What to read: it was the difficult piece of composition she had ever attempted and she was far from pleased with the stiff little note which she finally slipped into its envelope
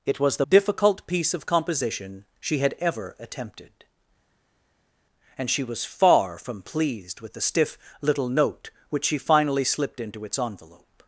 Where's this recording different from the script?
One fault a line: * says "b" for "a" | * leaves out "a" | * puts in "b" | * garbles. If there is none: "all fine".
all fine